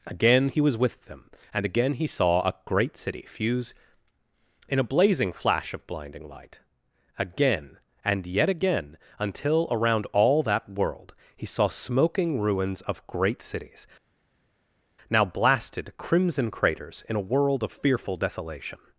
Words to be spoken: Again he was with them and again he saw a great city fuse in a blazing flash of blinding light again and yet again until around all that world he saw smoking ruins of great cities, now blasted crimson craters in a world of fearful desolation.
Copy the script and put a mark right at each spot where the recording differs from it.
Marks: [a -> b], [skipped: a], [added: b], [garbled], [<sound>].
Again he was with them and again he saw a great city fuse in a blazing flash of blinding light again and yet again until around all that world he saw smoking ruins of great cities, now blasted crimson craters in a world of fearful desolation.